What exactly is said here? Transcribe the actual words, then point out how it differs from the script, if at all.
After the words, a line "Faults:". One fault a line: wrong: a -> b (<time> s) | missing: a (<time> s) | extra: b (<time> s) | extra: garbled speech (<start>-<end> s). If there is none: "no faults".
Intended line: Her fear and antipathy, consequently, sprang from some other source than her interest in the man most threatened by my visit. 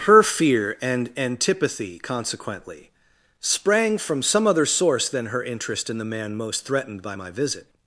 Her fear and antipathy, consequently, sprang from some other source than her interest in the man most threatened by my visit.
Faults:
no faults